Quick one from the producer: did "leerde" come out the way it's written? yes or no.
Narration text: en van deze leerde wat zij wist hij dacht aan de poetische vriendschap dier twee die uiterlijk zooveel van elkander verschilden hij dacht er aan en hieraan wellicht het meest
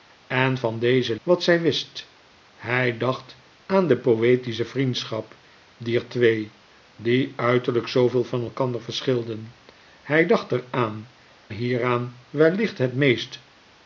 no